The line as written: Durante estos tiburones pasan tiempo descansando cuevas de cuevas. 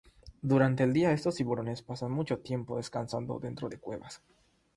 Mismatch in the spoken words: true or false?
true